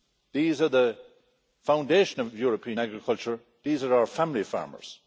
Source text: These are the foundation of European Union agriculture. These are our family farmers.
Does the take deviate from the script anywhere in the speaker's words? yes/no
yes